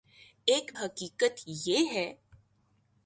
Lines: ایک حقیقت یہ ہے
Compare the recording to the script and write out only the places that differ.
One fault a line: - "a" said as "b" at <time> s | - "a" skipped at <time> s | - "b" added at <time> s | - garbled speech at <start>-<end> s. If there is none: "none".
none